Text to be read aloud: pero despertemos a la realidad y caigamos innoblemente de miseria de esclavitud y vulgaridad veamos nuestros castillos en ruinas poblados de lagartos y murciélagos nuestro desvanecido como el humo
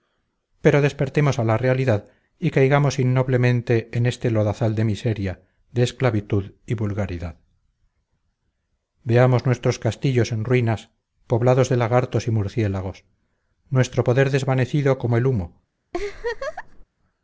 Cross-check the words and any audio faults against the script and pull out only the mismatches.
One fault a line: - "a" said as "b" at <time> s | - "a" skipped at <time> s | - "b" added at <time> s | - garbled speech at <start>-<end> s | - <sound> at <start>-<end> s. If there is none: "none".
- "en este lodazal" added at 3.9 s
- "poder" added at 14.0 s
- laugh at 15.9-16.8 s